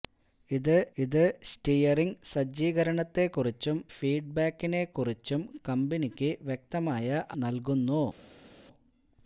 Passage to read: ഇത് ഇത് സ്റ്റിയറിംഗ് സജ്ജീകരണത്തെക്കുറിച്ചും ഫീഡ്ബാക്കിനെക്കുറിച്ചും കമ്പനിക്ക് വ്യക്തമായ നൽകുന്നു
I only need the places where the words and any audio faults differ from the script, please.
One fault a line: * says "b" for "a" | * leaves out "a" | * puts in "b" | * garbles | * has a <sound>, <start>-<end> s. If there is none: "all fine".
all fine